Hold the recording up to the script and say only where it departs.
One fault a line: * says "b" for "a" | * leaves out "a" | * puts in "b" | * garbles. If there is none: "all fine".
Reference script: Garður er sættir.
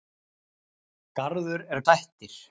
all fine